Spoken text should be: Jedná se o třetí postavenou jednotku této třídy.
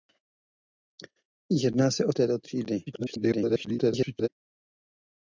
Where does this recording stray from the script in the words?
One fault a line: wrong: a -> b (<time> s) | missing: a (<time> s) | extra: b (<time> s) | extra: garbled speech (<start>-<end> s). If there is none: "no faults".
missing: třetí postavenou jednotku (2.1 s)
extra: garbled speech (2.9-4.3 s)